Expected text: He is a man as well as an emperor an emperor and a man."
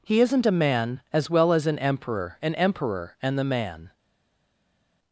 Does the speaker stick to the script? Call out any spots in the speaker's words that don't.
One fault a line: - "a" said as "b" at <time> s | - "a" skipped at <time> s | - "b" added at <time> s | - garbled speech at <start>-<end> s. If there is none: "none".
- "is" said as "isn't" at 0.2 s
- "a" said as "the" at 3.4 s